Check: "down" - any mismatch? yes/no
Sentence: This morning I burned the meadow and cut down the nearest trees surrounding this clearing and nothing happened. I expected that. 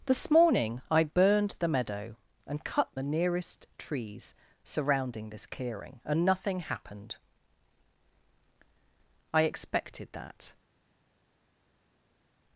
yes